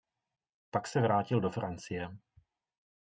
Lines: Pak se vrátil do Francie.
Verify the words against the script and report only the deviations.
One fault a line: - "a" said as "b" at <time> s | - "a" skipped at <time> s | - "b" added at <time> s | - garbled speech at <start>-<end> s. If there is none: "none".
none